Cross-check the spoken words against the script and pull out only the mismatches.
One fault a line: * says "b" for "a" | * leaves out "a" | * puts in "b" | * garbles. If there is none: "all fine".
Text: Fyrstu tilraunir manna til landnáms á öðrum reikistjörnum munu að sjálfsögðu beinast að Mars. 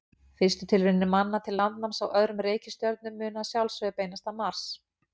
all fine